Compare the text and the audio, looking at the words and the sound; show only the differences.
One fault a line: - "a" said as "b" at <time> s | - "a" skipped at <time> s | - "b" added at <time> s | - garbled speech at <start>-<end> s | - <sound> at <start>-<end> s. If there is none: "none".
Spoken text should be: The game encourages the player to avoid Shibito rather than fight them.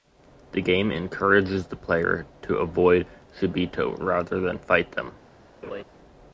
- laugh at 5.6-5.8 s